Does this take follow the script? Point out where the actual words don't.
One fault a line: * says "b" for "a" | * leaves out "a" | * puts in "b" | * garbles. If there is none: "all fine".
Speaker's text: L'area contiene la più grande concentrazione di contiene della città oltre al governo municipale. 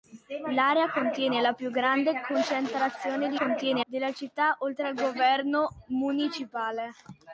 all fine